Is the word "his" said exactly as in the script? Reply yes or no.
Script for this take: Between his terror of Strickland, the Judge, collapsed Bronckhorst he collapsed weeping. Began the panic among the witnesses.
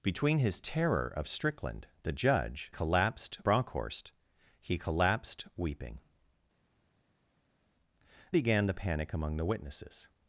yes